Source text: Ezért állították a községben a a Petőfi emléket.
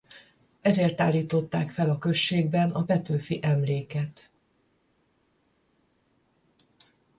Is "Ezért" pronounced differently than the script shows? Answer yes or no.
no